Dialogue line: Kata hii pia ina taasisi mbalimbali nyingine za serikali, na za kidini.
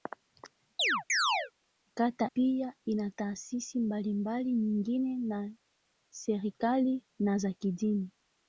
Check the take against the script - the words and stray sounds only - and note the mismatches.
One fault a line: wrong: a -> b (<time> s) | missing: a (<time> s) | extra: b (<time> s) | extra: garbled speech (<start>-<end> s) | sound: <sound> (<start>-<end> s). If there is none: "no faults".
sound: chirp (0.8-1.5 s)
missing: hii (2.3 s)